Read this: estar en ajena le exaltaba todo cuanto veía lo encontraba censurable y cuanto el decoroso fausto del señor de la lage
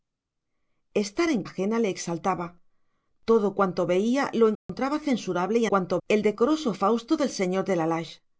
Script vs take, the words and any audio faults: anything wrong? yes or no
yes